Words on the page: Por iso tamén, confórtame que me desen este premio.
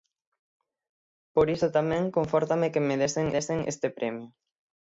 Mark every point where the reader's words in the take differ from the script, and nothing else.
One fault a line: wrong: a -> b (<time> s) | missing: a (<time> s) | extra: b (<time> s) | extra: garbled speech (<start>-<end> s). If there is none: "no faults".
extra: desen (3.3 s)